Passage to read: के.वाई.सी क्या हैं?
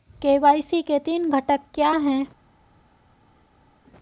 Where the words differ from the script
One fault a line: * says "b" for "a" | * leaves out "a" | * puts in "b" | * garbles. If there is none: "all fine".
* puts in "के तीन घटक"